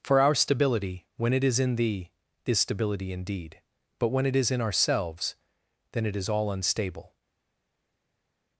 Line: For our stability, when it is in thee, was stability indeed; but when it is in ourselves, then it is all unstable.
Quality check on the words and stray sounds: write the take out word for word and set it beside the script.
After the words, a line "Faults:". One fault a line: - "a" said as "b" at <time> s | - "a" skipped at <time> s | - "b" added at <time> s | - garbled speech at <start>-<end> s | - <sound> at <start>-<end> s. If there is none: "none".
For our stability, when it is in thee, is stability indeed; but when it is in ourselves, then it is all unstable.
Faults:
- "was" said as "is" at 2.5 s